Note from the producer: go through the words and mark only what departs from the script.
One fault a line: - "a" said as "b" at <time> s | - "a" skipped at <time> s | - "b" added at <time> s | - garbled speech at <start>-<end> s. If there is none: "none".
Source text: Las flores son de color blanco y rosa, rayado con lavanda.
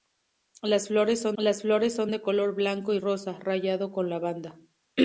- "las flores son" added at 1.4 s